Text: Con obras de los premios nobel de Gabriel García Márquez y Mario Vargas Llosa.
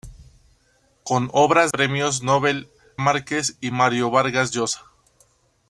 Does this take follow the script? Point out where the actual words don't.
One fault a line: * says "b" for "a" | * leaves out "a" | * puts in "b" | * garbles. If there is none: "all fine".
* leaves out "de los"
* leaves out "de Gabriel García"